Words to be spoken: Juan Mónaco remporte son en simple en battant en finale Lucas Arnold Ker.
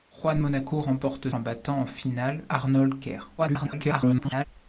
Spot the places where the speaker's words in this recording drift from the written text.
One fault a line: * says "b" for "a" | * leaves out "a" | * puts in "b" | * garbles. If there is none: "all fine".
* leaves out "son"
* leaves out "simple en"
* leaves out "Lucas"
* garbles